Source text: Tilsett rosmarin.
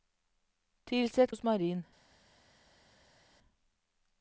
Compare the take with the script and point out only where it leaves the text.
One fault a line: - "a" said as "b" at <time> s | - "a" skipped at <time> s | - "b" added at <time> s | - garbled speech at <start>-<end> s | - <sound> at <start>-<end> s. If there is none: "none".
none